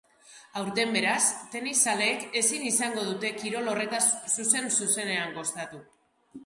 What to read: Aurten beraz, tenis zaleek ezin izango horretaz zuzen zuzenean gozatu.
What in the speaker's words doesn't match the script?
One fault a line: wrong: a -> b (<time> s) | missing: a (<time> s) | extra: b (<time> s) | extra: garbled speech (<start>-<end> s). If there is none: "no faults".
extra: dute kirol (3.1 s)